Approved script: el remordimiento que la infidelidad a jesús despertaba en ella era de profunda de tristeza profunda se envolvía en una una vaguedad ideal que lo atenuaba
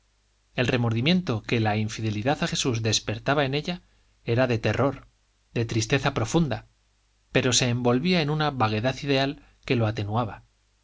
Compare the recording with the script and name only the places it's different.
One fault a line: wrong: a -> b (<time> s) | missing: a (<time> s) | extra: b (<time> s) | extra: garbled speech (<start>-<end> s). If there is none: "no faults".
wrong: profunda -> terror (4.6 s)
extra: pero (7.3 s)
missing: una (8.5 s)